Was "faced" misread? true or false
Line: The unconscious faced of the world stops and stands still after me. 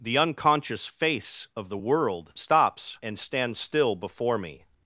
true